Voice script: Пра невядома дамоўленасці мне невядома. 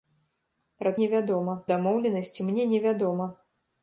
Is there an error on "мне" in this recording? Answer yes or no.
no